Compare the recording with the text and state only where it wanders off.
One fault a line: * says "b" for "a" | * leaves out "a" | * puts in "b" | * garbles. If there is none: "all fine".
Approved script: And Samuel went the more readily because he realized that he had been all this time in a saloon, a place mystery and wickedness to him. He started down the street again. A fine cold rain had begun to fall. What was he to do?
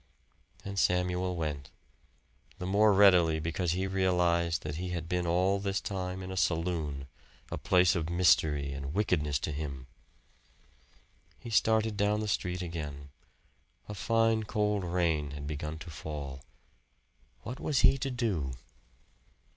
* puts in "of"